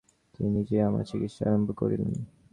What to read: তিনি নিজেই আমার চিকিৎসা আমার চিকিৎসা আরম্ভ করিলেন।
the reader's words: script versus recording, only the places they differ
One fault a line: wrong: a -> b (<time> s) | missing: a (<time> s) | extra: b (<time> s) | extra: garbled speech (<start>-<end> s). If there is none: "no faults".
missing: আমার চিকিৎসা (1.4 s)